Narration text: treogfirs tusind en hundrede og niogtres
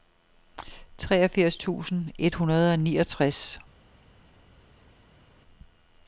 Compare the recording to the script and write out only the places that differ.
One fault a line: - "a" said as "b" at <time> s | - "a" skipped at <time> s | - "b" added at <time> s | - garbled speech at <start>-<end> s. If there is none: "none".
- "en" said as "et" at 2.2 s